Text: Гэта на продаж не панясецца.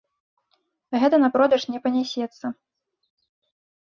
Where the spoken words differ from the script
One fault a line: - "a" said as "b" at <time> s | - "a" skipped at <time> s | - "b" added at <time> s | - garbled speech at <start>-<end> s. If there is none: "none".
none